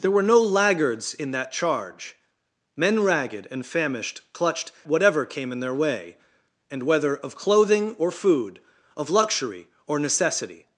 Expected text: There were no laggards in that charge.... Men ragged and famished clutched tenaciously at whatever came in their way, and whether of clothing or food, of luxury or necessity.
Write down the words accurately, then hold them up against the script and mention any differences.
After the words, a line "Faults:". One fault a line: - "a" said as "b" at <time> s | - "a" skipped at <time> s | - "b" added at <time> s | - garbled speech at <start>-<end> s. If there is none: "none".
There were no laggards in that charge.... Men ragged and famished clutched whatever came in their way, and whether of clothing or food, of luxury or necessity.
Faults:
- "tenaciously at" skipped at 4.7 s